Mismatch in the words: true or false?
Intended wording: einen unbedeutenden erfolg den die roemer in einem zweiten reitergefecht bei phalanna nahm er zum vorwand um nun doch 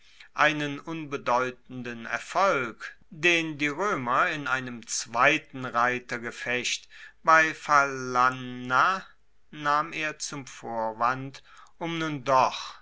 false